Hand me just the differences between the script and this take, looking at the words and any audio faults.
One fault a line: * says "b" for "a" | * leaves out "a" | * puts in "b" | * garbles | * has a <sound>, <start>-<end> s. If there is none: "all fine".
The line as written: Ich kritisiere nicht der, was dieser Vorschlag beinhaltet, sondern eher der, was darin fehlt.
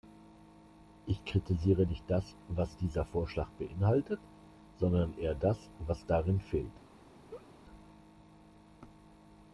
* says "das" for "der"
* says "das" for "der"
* has a laugh, 7.3-7.5 s